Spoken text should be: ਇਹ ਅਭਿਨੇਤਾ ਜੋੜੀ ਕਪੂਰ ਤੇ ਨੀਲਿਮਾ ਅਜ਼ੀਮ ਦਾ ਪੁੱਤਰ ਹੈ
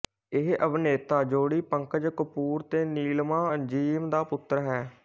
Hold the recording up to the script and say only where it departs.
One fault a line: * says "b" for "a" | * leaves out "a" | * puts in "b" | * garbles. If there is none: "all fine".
* puts in "ਪੰਕਜ"